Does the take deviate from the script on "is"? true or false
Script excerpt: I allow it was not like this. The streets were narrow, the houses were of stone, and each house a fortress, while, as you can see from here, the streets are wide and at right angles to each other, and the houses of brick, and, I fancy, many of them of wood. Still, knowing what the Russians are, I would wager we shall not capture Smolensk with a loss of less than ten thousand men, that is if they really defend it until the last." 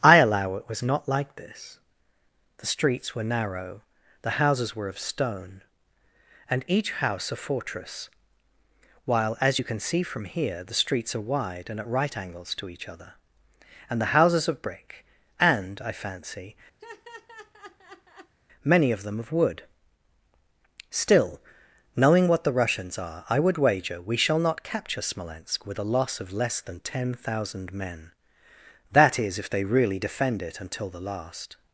false